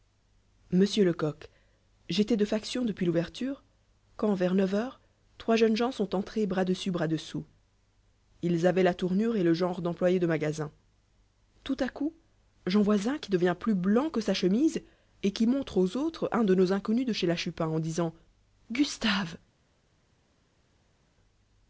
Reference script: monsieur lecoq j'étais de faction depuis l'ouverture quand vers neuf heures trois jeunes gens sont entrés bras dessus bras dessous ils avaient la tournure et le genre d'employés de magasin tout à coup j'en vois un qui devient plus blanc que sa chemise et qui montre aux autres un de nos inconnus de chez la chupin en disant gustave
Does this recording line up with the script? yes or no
yes